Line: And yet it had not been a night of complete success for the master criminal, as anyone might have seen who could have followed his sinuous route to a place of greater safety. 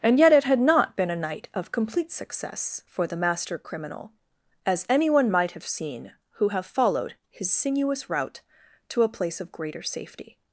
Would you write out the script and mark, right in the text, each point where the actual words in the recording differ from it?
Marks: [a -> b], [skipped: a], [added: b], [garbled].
And yet it had not been a night of complete success for the master criminal, as anyone might have seen who [skipped: could] have followed his sinuous route to a place of greater safety.